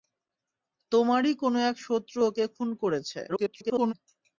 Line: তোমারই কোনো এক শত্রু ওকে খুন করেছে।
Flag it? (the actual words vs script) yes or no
yes